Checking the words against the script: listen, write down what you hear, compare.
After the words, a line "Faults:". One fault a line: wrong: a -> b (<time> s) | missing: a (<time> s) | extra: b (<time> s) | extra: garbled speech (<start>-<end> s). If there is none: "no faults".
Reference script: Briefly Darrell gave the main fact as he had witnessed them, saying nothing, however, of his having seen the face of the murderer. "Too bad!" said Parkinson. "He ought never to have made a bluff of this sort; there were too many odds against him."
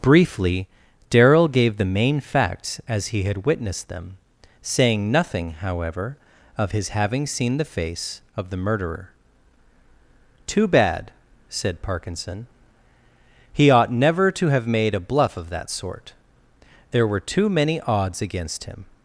Briefly Darrell gave the main facts as he had witnessed them, saying nothing, however, of his having seen the face of the murderer. "Too bad!" said Parkinson. "He ought never to have made a bluff of that sort; there were too many odds against him."
Faults:
wrong: fact -> facts (2.2 s)
wrong: this -> that (15.5 s)